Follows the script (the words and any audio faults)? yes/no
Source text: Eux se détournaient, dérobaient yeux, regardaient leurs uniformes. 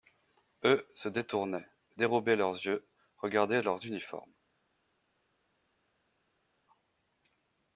no